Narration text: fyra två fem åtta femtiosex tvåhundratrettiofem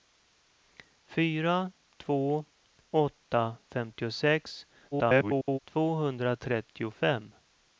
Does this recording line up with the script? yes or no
no